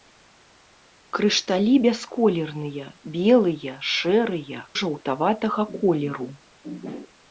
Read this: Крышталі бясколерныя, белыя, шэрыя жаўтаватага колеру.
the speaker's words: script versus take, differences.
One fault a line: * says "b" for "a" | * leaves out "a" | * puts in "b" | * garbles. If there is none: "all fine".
all fine